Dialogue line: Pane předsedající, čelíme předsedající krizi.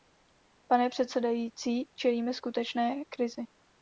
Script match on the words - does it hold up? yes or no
no